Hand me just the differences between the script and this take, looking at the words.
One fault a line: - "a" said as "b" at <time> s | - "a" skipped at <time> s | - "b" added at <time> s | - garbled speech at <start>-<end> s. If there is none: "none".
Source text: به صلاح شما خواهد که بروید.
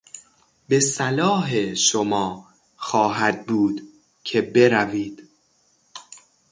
- "بود" added at 3.5 s